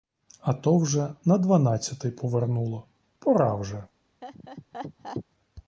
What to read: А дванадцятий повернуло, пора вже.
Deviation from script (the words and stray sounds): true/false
true